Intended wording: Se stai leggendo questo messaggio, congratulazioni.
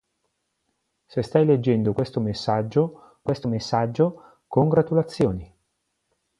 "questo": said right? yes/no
yes